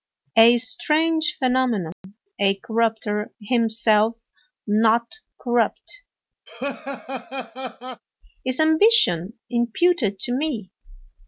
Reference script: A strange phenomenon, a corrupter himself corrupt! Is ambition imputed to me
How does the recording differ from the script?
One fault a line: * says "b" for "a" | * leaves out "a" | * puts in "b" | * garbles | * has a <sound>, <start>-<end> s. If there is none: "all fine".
* has a dropout, 1.9-2.0 s
* puts in "not"
* has a laugh, 6.5-8.0 s